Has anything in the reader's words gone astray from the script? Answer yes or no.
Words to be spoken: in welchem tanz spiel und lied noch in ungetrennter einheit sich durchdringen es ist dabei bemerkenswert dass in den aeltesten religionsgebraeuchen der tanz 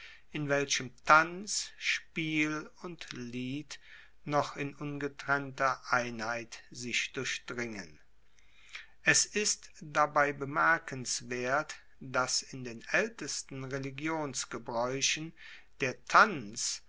no